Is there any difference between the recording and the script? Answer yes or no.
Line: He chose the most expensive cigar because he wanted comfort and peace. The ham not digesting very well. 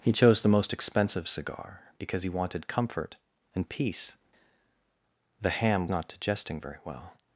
no